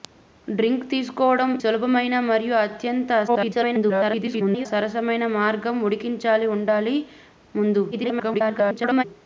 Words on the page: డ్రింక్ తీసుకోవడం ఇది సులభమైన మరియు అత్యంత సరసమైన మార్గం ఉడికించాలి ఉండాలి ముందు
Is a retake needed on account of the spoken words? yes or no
yes